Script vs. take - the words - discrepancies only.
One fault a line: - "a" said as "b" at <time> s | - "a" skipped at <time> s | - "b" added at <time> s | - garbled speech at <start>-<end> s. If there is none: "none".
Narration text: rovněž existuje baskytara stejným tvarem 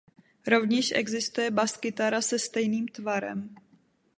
- "se" added at 2.2 s